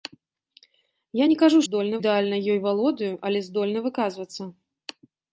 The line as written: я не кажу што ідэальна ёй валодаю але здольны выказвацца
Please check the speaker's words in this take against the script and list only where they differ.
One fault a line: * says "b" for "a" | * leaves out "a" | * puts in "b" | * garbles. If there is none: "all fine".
* says "здольны" for "што"